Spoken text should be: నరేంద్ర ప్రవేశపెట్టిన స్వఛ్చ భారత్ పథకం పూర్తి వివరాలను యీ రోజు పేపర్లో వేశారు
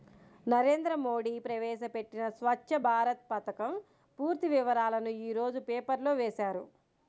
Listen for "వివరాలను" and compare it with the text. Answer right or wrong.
right